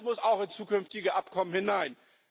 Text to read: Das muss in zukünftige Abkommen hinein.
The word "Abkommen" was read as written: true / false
true